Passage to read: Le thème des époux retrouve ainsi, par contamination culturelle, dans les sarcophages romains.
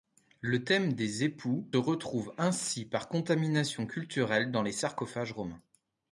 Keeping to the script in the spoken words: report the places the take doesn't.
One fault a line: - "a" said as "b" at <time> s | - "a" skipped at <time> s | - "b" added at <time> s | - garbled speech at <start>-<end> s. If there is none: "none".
none